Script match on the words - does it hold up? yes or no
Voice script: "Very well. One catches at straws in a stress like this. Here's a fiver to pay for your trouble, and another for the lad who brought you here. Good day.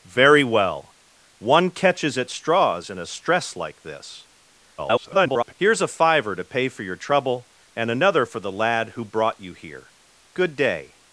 no